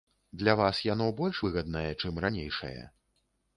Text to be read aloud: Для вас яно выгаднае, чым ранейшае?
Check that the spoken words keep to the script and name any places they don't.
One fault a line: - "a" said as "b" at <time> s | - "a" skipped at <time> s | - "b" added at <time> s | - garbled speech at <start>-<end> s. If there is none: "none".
- "больш" added at 1.2 s